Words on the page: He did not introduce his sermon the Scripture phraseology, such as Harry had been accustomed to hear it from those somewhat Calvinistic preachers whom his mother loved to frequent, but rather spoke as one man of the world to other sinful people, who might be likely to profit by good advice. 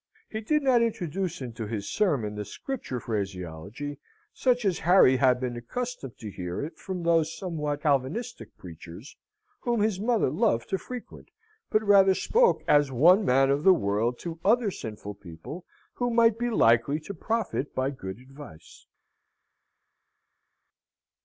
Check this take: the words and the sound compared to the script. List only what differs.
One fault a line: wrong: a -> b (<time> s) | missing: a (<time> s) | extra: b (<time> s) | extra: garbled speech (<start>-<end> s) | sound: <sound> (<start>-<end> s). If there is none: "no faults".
extra: into (1.4 s)